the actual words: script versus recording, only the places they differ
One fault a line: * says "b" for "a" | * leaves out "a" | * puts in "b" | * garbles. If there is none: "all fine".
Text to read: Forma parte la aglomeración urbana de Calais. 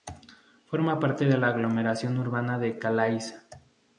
* puts in "de"